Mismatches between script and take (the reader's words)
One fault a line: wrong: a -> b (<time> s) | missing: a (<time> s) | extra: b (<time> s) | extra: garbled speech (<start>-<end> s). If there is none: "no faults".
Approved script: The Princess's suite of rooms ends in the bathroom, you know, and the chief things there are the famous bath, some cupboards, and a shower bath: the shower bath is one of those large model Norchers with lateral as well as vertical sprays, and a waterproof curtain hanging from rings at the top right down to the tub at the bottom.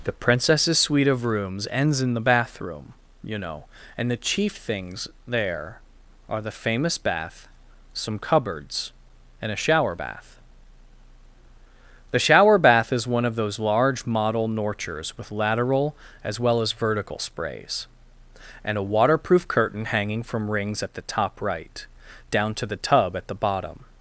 no faults